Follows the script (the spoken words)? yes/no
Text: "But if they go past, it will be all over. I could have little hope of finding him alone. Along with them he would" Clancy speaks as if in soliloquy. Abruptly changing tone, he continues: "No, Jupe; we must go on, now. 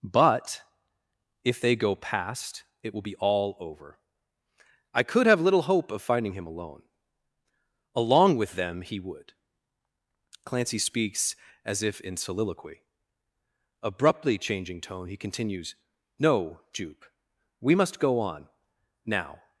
yes